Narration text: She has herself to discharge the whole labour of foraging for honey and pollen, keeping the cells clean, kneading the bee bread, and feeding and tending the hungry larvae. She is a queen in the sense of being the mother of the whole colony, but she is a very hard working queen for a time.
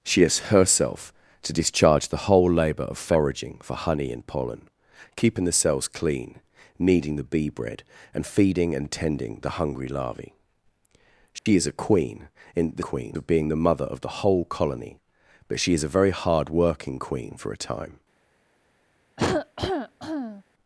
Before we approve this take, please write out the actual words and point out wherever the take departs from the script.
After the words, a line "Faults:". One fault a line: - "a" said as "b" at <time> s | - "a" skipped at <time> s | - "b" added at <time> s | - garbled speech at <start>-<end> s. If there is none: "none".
She has herself to discharge the whole labour of foraging for honey and pollen, keeping the cells clean, kneading the bee bread, and feeding and tending the hungry larvae. She is a queen in the queen of being the mother of the whole colony, but she is a very hard working queen for a time.
Faults:
- "sense" said as "queen" at 12.8 s